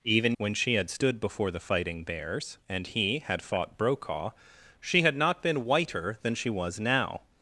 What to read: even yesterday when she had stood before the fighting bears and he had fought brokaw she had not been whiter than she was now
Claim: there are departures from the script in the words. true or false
true